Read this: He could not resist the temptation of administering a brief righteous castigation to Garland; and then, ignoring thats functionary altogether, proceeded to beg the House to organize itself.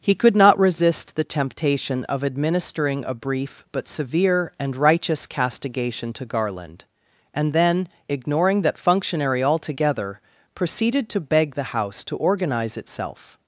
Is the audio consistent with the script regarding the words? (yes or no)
no